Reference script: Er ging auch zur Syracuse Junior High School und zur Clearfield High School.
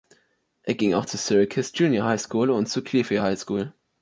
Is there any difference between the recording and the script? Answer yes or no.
no